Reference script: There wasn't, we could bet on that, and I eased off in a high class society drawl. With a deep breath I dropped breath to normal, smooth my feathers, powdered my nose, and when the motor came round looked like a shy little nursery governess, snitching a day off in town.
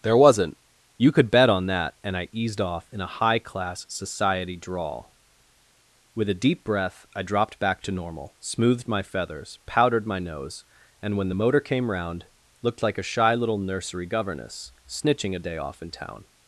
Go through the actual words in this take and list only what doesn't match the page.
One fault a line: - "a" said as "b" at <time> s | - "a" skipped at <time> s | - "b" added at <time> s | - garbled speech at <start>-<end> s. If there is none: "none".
- "we" said as "you" at 1.0 s
- "breath" said as "back" at 7.6 s
- "smooth" said as "smoothed" at 8.4 s